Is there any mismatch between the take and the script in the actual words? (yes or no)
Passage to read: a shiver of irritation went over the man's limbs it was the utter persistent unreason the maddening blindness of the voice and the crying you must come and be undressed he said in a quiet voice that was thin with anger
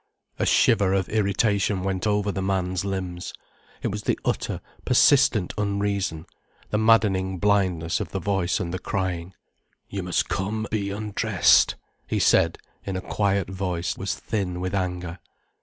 yes